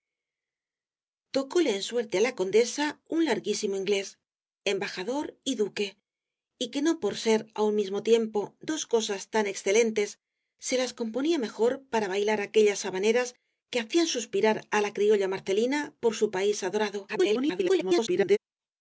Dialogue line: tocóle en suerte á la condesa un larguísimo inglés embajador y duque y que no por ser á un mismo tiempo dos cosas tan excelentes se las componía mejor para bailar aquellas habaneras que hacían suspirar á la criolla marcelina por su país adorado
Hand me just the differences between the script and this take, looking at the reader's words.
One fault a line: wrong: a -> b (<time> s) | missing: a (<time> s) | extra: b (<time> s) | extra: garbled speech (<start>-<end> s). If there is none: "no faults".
extra: garbled speech (17.1-18.4 s)